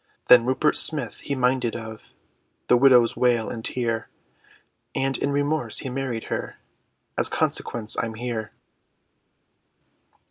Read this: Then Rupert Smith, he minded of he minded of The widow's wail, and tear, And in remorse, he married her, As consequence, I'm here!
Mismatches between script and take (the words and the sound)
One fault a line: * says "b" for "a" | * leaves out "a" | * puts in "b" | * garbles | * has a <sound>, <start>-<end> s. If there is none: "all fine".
* leaves out "he minded of"